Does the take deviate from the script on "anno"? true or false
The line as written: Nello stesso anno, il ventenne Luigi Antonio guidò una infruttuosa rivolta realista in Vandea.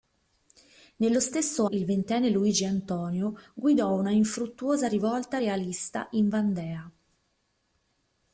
true